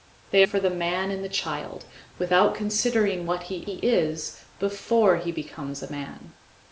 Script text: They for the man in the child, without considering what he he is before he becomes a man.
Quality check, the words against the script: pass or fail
pass